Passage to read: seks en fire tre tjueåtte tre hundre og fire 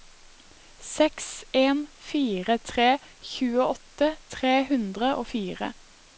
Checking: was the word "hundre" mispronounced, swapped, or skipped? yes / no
no